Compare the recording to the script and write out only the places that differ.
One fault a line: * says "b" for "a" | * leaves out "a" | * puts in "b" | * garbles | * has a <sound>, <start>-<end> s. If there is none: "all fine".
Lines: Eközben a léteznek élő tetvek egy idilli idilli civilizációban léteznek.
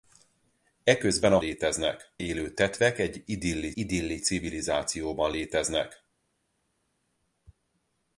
all fine